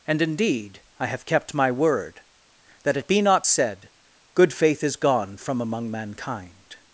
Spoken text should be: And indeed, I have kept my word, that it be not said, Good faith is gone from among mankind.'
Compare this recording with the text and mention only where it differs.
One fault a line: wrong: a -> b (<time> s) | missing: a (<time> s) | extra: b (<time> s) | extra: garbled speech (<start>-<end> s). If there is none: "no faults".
no faults